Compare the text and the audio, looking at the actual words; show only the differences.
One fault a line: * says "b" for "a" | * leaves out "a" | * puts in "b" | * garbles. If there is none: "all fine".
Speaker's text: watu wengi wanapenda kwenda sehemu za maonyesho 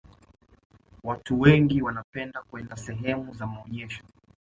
all fine